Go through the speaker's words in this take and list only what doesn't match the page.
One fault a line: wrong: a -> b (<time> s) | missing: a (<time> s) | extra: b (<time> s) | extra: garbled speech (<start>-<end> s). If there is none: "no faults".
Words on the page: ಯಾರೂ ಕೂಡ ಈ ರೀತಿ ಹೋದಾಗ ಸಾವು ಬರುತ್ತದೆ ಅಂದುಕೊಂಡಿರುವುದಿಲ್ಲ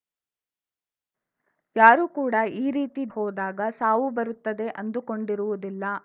no faults